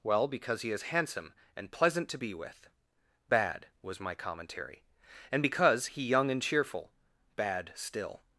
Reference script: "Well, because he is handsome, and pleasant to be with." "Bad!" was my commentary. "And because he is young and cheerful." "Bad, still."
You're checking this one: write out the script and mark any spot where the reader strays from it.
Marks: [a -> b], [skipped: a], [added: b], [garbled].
"Well, because he is handsome, and pleasant to be with." "Bad!" was my commentary. "And because he [skipped: is] young and cheerful." "Bad, still."